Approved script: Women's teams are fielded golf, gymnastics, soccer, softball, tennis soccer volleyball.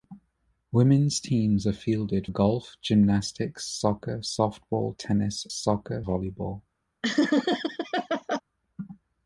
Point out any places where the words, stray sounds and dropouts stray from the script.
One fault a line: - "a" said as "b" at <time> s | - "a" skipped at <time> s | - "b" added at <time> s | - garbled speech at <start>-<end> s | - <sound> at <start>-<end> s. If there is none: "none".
- laugh at 7.0-8.4 s